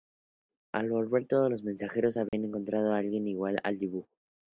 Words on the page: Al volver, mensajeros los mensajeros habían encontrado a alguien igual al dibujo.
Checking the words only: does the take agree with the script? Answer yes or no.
no